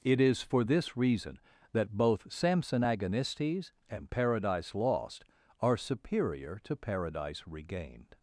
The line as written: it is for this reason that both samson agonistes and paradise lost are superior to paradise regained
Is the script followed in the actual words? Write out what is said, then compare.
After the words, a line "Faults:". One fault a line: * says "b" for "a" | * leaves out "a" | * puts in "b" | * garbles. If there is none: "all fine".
it is for this reason that both samson agonistes and paradise lost are superior to paradise regained
Faults:
all fine